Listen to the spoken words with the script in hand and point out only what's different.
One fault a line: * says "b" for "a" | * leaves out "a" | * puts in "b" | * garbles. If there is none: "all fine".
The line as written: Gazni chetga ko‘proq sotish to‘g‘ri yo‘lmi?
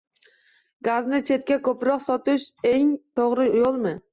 * puts in "eng"